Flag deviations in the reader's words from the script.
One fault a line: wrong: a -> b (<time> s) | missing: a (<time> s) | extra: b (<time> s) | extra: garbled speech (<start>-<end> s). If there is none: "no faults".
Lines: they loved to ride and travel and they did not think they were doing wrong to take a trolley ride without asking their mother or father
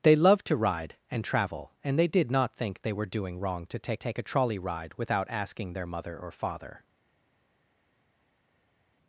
extra: take (3.9 s)